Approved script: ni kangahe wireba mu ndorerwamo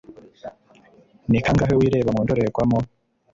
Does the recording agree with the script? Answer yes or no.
yes